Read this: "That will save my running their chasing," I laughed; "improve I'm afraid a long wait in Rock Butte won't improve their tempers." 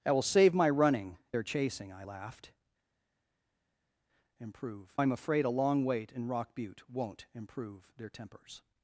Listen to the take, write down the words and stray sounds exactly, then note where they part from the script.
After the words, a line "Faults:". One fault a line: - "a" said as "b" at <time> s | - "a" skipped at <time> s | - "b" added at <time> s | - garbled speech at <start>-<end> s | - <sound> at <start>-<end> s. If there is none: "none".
"That will save my running their chasing," I laughed; "improve I'm afraid a long wait in Rock Butte won't improve their tempers."
Faults:
none